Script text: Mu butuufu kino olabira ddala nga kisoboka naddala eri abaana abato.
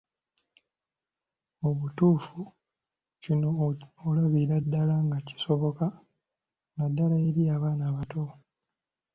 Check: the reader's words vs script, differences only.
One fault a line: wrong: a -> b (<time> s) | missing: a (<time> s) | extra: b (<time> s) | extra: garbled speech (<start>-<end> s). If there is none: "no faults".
no faults